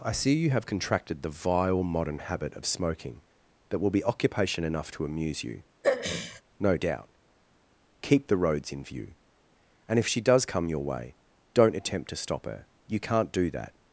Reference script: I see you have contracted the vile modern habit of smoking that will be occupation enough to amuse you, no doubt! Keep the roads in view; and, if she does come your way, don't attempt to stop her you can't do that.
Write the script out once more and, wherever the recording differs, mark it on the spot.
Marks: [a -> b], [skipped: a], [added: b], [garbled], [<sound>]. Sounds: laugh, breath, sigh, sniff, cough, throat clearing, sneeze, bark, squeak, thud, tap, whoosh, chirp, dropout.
I see you have contracted the vile modern habit of smoking that will be occupation enough to amuse you, [throat clearing] no doubt! Keep the roads in view; and, if she does come your way, don't attempt to stop her you can't do that.